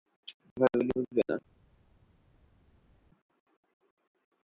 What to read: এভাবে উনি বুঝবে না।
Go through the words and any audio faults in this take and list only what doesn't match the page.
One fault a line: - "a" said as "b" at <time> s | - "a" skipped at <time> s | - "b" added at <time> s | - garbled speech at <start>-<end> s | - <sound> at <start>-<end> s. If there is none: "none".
none